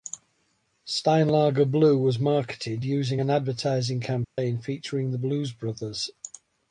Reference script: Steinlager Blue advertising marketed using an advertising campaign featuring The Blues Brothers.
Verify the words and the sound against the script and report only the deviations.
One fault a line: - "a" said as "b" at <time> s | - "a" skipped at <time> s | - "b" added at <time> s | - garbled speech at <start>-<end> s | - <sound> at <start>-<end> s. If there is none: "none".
- "advertising" said as "was" at 1.9 s
- dropout at 4.2-4.4 s